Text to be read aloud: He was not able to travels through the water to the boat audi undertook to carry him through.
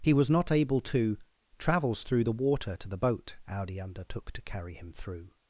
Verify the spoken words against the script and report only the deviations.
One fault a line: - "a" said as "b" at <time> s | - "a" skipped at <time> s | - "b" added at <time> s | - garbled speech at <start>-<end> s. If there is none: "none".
none